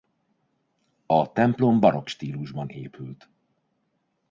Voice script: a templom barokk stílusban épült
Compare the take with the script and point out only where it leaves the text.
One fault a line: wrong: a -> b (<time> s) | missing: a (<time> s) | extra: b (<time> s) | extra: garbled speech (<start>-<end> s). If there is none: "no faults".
no faults